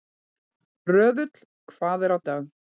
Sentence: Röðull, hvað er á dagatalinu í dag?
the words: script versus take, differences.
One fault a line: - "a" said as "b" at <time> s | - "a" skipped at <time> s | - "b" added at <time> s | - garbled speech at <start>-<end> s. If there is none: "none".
- "dagatalinu" skipped at 2.2 s